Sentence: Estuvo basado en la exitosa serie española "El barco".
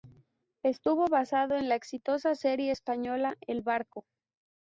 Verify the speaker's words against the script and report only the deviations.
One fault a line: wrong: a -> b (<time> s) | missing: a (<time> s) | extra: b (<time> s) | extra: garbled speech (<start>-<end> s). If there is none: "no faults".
no faults